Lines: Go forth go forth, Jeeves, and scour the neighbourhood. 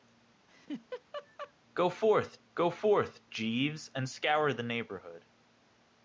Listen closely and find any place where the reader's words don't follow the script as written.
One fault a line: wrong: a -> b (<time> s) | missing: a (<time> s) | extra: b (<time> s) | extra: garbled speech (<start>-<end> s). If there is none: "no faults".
no faults